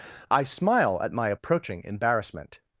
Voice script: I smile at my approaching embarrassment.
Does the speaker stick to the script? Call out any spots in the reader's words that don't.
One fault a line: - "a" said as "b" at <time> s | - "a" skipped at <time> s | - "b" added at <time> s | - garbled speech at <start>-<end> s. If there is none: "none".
none